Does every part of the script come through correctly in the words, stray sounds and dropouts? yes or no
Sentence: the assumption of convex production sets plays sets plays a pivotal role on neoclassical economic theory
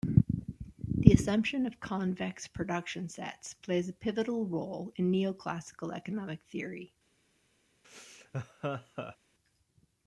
no